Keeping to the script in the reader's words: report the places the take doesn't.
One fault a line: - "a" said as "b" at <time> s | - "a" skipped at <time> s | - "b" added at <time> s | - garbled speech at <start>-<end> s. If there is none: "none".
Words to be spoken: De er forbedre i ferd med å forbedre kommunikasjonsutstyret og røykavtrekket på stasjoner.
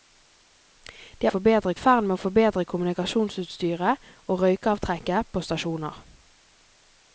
none